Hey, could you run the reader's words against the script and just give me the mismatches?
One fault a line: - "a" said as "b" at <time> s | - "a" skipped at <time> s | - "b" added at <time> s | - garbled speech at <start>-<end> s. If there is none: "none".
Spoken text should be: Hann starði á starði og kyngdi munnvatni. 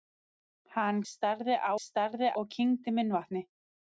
none